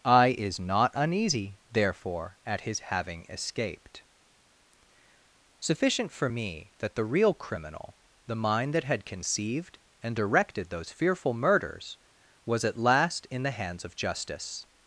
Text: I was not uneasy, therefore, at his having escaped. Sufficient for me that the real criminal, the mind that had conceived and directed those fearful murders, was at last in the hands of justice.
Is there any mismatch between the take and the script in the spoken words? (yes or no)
yes